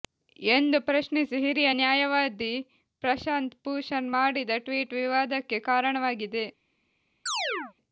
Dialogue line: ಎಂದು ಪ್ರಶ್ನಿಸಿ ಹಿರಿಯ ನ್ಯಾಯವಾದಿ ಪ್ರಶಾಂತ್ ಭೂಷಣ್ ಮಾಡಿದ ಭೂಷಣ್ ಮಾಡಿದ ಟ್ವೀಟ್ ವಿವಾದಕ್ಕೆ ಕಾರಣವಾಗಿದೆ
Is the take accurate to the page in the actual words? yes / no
no